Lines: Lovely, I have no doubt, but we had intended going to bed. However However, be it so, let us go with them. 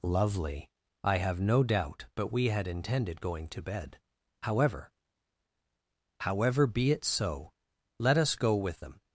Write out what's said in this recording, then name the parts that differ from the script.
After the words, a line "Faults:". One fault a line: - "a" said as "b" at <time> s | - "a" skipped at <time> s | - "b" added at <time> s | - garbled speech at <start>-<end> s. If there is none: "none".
Lovely, I have no doubt, but we had intended going to bed. However However, be it so, let us go with them.
Faults:
none